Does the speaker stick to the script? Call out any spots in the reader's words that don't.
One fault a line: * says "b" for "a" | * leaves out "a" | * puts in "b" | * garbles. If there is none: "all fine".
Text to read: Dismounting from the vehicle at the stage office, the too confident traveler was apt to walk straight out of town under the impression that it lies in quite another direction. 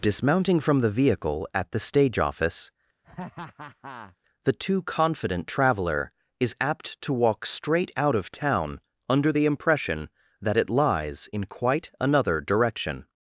* says "is" for "was"